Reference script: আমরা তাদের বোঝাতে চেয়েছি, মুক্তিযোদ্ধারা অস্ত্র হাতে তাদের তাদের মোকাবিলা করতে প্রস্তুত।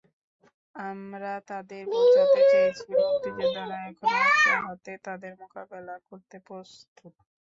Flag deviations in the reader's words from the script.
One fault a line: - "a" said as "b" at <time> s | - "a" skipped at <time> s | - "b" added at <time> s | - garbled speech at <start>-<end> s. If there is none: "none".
- "এখনো" added at 3.9 s
- "তাদের" skipped at 5.3 s